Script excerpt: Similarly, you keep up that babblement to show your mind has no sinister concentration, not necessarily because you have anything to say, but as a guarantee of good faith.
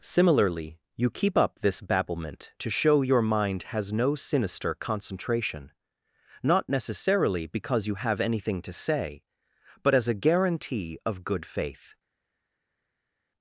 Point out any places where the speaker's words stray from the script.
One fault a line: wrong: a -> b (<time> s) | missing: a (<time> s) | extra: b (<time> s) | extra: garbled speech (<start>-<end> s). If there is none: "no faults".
wrong: that -> this (1.6 s)